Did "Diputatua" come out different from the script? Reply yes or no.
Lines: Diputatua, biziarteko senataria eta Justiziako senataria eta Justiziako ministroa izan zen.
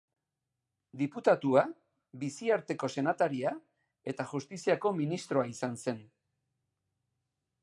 no